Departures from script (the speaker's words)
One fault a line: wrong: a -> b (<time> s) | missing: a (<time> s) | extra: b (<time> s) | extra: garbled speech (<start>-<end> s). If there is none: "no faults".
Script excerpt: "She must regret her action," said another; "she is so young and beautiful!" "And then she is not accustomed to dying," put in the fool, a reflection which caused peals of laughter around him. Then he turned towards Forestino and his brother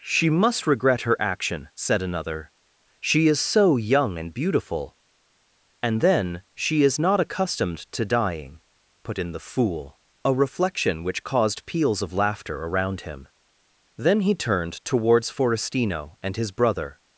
no faults